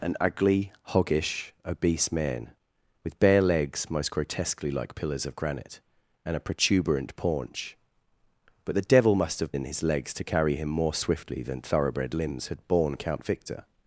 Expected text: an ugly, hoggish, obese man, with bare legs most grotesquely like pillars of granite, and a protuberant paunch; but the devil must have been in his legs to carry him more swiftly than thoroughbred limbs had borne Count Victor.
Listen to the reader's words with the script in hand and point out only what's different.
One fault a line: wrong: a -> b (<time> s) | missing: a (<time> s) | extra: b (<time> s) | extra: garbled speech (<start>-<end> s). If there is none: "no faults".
missing: been (9.5 s)